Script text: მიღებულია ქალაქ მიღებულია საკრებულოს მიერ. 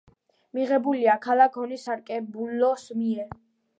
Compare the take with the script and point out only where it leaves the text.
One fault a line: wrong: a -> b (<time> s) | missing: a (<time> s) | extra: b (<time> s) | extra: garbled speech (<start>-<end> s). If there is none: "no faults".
wrong: მიღებულია -> ონის (1.6 s)